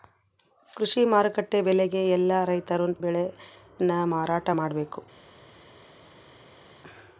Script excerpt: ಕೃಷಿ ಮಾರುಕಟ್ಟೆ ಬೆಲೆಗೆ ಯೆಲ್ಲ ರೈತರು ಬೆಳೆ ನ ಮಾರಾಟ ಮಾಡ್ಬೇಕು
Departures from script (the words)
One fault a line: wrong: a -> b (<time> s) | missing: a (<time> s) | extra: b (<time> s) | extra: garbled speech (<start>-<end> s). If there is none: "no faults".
no faults